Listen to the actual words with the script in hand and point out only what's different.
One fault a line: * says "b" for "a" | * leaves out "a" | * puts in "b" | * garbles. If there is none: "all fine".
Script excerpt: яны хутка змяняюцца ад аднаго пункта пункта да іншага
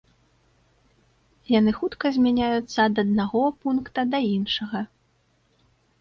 * leaves out "пункта"